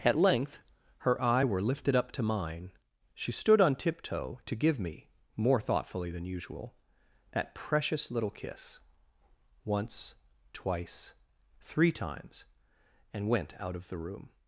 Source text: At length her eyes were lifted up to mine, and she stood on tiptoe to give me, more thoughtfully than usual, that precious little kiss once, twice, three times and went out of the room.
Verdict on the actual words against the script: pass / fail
fail